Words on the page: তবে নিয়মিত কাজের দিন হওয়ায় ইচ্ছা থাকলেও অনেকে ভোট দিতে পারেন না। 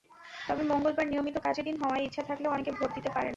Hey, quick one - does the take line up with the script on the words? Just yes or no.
no